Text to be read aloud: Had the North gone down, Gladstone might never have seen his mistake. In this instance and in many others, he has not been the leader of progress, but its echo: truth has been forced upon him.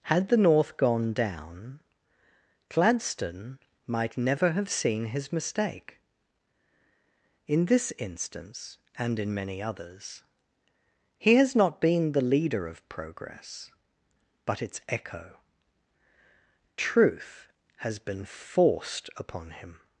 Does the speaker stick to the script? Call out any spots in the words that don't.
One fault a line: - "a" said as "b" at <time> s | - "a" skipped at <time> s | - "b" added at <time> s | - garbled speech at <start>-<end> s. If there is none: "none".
none